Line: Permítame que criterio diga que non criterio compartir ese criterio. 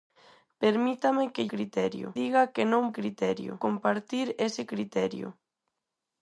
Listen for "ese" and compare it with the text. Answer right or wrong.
right